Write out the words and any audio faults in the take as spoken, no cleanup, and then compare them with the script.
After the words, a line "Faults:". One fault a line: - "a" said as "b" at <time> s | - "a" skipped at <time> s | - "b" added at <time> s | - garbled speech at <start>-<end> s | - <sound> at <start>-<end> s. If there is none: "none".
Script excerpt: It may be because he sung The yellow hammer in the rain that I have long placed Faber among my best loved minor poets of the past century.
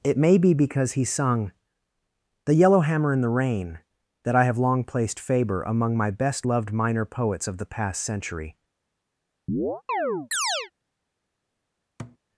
It may be because he sung The yellow hammer in the rain that I have long placed Faber among my best loved minor poets of the past century.
Faults:
- chirp at 9.5-10.7 s
- thud at 12.0-12.2 s